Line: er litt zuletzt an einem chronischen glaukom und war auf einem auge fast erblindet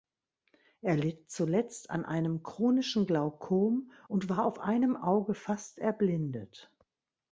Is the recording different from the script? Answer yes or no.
no